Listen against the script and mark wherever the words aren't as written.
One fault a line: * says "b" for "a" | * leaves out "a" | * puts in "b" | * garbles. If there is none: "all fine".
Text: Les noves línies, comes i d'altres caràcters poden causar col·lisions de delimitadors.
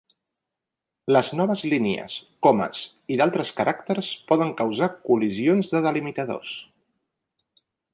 all fine